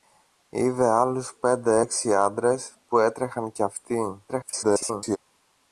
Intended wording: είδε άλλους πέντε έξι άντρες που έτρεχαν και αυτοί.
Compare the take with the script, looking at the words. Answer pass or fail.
fail